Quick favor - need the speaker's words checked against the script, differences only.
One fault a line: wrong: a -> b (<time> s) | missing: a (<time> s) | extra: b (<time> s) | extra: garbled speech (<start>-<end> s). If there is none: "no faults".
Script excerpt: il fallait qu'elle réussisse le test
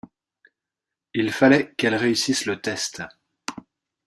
no faults